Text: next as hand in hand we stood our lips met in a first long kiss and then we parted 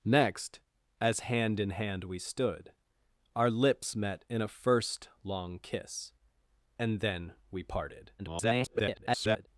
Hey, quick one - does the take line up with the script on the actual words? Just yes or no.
no